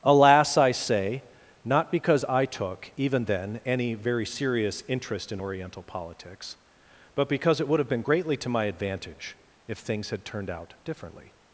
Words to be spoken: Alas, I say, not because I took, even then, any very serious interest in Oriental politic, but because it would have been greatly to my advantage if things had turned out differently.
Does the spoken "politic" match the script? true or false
false